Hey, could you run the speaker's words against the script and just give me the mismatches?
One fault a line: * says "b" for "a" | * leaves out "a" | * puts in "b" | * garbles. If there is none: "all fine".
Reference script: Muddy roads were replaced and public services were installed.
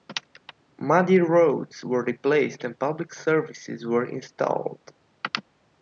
all fine